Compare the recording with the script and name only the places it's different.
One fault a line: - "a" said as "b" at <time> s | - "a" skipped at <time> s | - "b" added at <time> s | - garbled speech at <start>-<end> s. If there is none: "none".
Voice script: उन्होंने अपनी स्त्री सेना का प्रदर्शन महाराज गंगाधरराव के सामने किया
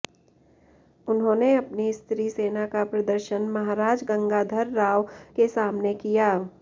none